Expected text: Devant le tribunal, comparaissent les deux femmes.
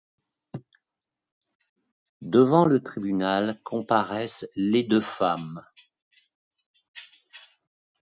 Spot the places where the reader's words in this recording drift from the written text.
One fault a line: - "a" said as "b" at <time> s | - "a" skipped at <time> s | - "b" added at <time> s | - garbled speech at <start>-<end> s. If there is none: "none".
none